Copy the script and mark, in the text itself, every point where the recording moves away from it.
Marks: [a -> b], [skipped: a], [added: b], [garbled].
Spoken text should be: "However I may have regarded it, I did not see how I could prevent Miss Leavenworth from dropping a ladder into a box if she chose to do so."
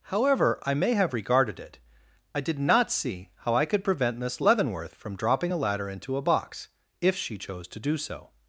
"However I may have regarded it, I did not see how I could prevent Miss Leavenworth from dropping a ladder into a box if she chose to do so."